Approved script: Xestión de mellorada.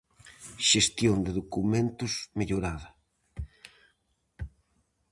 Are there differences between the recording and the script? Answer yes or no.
yes